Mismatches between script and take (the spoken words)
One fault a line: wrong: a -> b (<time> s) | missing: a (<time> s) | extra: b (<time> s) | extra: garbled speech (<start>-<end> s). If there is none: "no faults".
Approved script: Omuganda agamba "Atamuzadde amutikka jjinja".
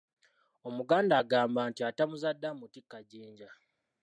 extra: nti (1.7 s)